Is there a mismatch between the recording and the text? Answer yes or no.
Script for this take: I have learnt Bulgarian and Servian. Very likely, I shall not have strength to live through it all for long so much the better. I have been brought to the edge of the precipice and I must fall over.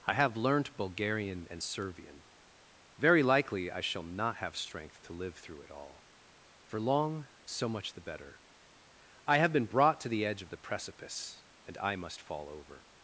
no